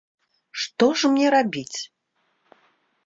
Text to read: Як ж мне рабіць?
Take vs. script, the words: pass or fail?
fail